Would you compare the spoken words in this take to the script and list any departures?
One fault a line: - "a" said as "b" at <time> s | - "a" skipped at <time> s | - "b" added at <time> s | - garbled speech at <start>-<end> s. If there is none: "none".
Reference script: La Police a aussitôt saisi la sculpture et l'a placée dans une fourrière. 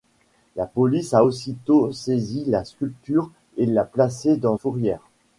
- "une" skipped at 4.6 s